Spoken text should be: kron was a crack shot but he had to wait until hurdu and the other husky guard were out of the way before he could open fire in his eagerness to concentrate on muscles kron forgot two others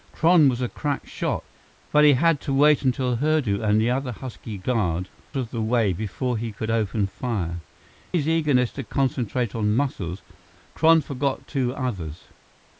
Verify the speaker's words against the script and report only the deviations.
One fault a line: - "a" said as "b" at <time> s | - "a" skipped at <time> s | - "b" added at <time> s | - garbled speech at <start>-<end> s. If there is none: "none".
- "were out" skipped at 5.1 s
- "in" skipped at 7.6 s